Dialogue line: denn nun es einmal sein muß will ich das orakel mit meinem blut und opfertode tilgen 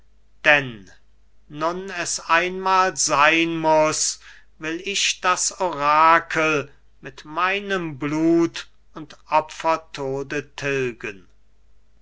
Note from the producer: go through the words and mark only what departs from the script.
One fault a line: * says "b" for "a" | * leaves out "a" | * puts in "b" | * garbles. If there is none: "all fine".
all fine